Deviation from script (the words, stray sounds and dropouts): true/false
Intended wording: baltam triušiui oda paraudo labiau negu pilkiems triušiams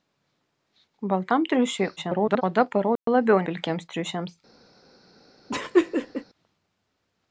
true